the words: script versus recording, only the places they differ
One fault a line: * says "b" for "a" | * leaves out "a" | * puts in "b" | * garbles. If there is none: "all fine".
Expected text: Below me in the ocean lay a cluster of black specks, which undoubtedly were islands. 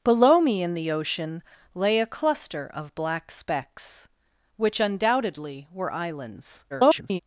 * garbles